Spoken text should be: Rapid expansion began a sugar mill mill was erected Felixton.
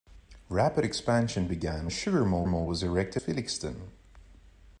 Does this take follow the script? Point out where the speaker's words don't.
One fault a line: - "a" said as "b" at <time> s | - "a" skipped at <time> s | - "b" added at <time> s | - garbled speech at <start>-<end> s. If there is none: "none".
none